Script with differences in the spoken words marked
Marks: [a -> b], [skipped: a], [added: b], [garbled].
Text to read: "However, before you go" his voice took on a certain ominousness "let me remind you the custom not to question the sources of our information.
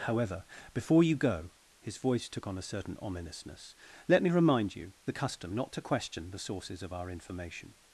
"However, before you go" his voice took on a certain ominousness "let me remind you the custom not to question the sources of our information.